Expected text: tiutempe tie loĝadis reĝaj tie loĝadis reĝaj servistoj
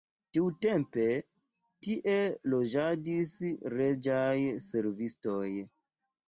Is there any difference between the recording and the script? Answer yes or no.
yes